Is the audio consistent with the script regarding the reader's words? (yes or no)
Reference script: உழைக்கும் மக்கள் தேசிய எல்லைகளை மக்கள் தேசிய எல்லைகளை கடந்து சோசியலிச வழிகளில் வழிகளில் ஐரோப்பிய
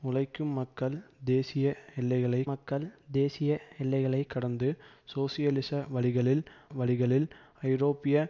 yes